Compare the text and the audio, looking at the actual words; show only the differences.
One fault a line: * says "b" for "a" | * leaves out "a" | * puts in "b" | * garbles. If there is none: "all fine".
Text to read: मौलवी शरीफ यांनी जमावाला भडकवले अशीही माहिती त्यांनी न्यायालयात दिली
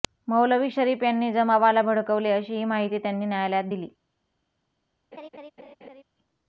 all fine